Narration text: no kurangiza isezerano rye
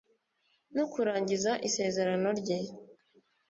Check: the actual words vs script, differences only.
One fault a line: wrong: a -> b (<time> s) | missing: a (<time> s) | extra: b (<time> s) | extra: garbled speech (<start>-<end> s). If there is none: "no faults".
no faults